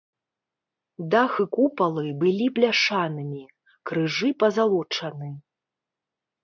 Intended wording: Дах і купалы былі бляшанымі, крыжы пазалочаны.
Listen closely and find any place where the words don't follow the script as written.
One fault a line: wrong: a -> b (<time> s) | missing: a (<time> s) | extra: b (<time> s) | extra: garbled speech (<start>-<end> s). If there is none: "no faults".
no faults